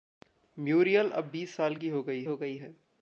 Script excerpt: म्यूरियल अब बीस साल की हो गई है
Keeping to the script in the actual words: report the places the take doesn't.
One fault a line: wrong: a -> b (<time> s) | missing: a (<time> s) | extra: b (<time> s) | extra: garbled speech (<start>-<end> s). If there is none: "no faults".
extra: हो गई (2.2 s)